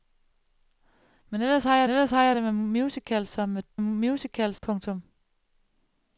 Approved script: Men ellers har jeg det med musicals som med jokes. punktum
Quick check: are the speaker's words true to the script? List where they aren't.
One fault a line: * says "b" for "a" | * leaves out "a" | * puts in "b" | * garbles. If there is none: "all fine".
* puts in "ellers har jeg"
* says "musicals" for "jokes"